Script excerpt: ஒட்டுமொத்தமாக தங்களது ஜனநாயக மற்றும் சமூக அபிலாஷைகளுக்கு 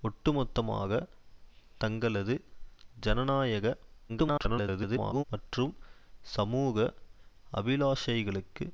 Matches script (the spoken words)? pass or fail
fail